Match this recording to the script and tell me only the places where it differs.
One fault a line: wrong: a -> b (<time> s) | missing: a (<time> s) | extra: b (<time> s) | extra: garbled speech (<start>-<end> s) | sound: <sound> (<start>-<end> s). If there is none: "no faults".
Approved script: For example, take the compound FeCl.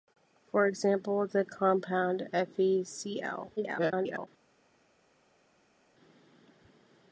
missing: take (1.3 s)
extra: garbled speech (3.6-4.3 s)